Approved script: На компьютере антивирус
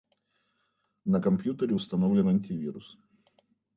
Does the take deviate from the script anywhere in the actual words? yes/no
yes